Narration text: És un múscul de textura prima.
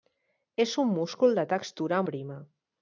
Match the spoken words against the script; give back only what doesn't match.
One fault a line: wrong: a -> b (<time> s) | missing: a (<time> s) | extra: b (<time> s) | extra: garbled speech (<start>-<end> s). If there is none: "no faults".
no faults